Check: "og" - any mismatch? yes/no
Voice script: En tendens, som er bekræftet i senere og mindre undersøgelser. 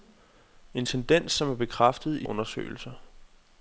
yes